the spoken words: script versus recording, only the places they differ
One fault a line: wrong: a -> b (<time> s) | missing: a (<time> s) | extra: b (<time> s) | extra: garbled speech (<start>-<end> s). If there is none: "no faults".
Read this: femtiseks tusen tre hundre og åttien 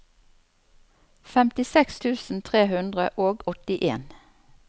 no faults